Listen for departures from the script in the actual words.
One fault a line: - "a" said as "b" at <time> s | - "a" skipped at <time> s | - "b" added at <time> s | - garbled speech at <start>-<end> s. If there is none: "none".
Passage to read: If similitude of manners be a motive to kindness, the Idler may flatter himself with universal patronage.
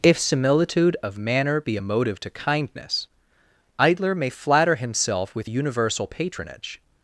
- "manners" said as "manner" at 1.1 s
- "the" skipped at 3.1 s